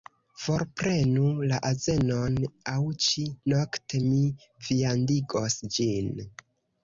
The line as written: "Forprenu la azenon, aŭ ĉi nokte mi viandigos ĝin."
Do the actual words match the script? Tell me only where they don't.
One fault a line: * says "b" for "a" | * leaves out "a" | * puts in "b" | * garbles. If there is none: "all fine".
all fine